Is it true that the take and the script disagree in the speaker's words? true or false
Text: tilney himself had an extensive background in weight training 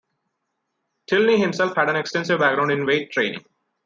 false